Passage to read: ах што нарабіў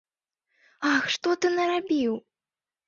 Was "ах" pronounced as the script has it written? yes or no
yes